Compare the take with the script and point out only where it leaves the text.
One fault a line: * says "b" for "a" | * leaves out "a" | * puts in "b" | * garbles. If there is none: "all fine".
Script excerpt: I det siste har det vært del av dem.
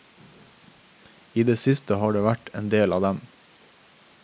* puts in "en"